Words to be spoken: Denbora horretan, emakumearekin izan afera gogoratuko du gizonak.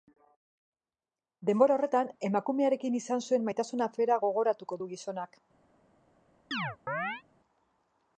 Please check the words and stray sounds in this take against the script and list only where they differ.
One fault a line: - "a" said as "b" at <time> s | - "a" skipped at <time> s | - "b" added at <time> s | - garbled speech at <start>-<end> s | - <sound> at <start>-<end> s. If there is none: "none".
- "zuen maitasun" added at 3.3 s
- chirp at 6.5-7.2 s